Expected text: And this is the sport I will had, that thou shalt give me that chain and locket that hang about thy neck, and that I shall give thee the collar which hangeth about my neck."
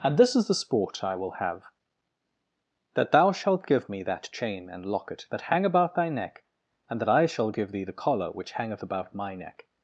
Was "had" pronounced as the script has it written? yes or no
no